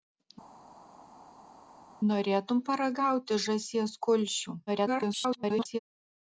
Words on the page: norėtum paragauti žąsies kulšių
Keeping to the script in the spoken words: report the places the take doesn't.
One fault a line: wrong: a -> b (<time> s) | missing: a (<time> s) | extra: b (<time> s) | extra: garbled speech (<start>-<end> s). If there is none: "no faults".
extra: garbled speech (4.7-5.8 s)